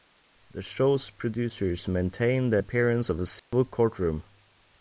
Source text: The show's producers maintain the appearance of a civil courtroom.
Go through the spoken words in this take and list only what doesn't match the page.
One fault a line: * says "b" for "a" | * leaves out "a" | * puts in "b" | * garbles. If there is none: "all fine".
all fine